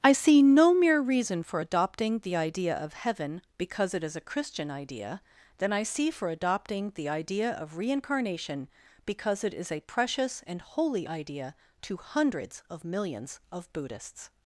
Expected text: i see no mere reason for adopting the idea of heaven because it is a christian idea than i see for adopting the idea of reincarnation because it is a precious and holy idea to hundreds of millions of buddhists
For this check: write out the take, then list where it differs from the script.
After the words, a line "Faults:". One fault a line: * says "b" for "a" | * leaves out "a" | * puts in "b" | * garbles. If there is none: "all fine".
i see no mere reason for adopting the idea of heaven because it is a christian idea than i see for adopting the idea of reincarnation because it is a precious and holy idea to hundreds of millions of buddhists
Faults:
all fine